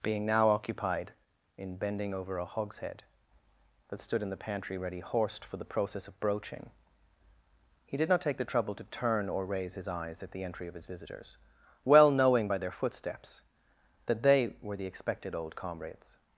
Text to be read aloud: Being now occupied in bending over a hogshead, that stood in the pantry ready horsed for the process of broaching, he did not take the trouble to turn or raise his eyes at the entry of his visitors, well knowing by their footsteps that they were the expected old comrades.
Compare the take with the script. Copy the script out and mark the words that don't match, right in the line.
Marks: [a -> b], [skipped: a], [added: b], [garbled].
Being now occupied in bending over a hogshead, that stood in the pantry ready horsed for the process of broaching, he did not take the trouble to turn or raise his eyes at the entry of his visitors, well knowing by their footsteps that they were the expected old comrades.